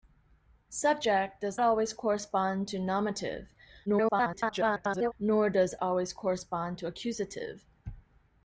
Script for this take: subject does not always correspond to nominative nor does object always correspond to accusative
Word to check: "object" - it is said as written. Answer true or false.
false